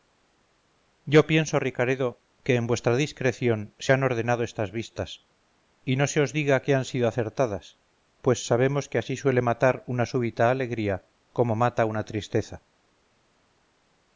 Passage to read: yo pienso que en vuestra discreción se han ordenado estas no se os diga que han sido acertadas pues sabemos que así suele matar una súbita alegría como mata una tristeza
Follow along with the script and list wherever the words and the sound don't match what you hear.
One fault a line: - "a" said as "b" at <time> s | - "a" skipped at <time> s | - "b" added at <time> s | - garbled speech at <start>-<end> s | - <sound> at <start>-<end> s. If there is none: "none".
- "ricaredo" added at 1.6 s
- "vistas y" added at 4.7 s